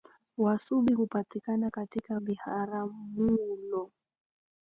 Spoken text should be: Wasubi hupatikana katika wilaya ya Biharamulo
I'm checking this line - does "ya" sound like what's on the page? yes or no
no